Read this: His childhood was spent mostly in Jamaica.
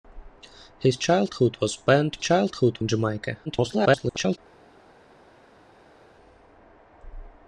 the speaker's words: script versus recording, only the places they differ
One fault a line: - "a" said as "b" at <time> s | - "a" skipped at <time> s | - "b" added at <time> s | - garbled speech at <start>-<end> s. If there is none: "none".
- "mostly" said as "childhood" at 2.2 s
- garbled speech at 3.5-4.4 s